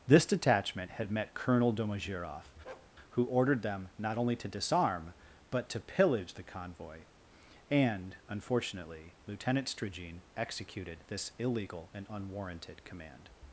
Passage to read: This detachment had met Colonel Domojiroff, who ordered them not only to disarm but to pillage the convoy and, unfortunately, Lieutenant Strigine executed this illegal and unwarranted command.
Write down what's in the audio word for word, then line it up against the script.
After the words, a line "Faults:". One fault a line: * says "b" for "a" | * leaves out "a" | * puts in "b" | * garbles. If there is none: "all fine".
This detachment had met Colonel Domojiroff, who ordered them not only to disarm but to pillage the convoy and, unfortunately, Lieutenant Strigine executed this illegal and unwarranted command.
Faults:
all fine